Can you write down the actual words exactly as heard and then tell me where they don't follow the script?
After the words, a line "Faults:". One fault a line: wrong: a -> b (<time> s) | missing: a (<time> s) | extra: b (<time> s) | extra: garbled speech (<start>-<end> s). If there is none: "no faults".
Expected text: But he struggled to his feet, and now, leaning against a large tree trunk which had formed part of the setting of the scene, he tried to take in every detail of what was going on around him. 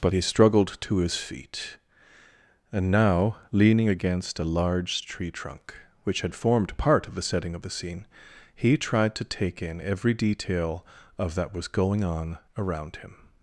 But he struggled to his feet, and now, leaning against a large tree trunk which had formed part of the setting of the scene, he tried to take in every detail of that was going on around him.
Faults:
wrong: what -> that (11.3 s)